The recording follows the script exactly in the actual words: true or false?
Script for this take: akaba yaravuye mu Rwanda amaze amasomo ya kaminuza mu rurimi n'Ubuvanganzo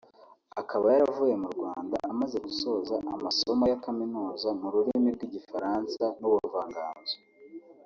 false